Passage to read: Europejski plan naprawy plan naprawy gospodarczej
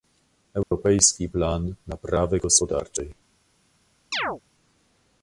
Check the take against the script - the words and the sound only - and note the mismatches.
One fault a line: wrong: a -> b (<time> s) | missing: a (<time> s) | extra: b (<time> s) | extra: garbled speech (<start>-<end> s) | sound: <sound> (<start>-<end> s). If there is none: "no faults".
sound: dropout (0.6-0.7 s)
missing: plan naprawy (2.4 s)
sound: chirp (4.1-4.4 s)